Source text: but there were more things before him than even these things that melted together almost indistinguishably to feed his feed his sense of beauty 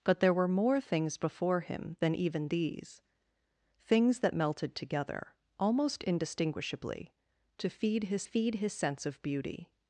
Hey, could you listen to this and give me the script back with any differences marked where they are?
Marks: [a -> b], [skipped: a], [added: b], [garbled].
but there were more things before him than even these things that melted together almost indistinguishably to feed his feed his sense of beauty